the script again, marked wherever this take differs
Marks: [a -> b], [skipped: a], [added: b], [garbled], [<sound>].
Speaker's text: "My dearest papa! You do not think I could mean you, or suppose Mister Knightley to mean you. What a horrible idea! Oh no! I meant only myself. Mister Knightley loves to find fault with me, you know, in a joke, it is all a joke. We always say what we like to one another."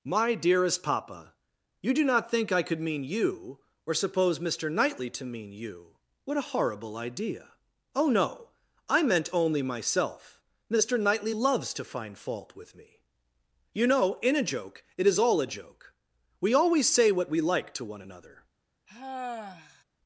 "My dearest papa! You do not think I could mean you, or suppose Mister Knightley to mean you. What a horrible idea! Oh no! I meant only myself. Mister Knightley loves to find fault with me, you know, in a joke, it is all a joke. We always say what we like to one another." [sigh]